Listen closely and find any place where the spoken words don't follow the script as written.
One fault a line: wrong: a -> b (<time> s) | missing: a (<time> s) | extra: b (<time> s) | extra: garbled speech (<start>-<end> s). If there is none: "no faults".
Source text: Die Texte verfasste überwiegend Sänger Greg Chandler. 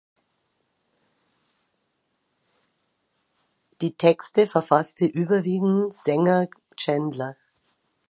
missing: Greg (6.5 s)